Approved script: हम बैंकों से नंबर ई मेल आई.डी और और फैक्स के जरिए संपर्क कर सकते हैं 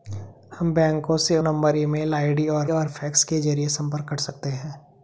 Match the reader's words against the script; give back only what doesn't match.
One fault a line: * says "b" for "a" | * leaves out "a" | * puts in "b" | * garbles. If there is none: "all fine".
all fine